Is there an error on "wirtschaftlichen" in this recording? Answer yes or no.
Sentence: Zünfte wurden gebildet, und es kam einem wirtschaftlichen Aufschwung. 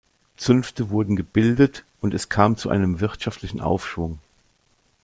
no